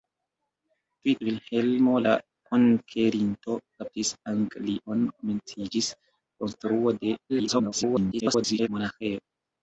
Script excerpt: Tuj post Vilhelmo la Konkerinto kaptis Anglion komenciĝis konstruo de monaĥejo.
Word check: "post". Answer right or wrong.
wrong